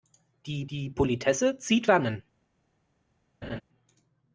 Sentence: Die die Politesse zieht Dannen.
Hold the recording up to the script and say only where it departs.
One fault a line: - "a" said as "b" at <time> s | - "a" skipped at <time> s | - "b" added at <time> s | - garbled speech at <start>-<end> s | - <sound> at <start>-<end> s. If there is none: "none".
- laugh at 3.4-3.6 s